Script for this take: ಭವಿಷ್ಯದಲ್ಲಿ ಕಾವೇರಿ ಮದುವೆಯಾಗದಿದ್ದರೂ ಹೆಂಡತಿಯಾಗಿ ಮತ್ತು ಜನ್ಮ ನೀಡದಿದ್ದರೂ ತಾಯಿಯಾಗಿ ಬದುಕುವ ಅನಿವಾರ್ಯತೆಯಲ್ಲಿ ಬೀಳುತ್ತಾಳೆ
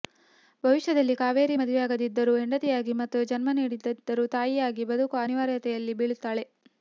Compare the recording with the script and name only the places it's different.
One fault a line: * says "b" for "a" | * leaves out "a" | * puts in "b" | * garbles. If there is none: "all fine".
all fine